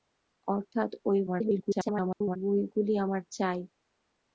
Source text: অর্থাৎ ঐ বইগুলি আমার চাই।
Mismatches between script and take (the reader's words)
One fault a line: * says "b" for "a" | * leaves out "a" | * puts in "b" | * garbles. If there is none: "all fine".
* garbles